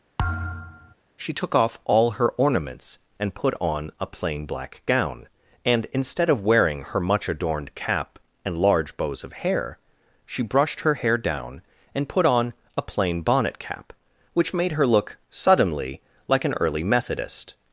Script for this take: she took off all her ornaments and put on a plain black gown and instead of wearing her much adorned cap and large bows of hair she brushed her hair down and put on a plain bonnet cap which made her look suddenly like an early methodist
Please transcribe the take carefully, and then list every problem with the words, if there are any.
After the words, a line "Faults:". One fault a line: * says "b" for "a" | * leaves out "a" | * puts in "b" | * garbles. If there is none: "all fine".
she took off all her ornaments and put on a plain black gown and instead of wearing her much adorned cap and large bows of hair she brushed her hair down and put on a plain bonnet cap which made her look suddenly like an early methodist
Faults:
all fine